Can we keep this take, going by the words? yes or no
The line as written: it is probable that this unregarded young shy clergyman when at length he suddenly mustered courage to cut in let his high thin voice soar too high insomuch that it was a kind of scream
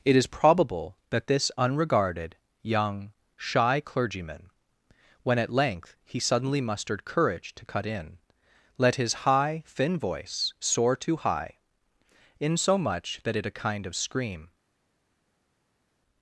no